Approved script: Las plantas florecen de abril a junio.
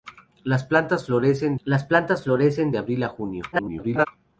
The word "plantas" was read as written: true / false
true